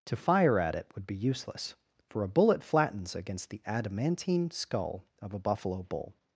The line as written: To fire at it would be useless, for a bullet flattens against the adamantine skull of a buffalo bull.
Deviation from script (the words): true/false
false